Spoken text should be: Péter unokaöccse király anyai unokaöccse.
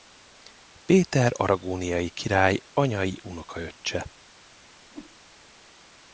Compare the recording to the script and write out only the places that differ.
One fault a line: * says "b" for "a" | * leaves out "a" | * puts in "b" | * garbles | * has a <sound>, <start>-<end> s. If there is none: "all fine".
* says "aragóniai" for "unokaöccse"
* has a whoosh, 4.9-5.2 s